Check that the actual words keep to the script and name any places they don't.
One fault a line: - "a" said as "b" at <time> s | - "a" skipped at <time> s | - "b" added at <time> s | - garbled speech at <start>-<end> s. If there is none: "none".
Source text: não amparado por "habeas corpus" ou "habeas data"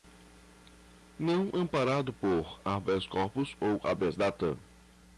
none